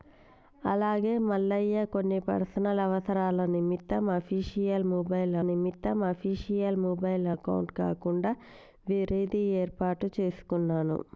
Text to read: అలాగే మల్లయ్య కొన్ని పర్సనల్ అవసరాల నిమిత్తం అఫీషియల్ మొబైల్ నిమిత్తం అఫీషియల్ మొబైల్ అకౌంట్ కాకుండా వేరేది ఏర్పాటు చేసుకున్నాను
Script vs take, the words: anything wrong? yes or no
no